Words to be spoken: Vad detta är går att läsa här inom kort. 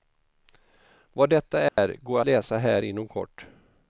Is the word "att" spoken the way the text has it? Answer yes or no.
no